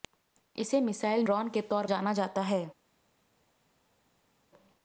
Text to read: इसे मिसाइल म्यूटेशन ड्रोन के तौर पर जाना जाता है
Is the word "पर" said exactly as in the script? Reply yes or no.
no